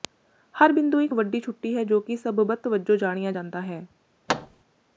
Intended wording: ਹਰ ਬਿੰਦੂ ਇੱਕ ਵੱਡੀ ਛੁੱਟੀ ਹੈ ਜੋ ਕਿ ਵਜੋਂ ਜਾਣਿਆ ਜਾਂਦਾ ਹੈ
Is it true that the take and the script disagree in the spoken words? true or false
true